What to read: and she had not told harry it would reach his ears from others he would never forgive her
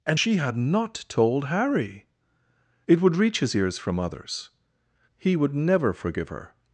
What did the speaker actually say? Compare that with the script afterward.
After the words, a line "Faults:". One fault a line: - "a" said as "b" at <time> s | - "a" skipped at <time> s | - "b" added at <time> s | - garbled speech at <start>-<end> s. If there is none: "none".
and she had not told harry it would reach his ears from others he would never forgive her
Faults:
none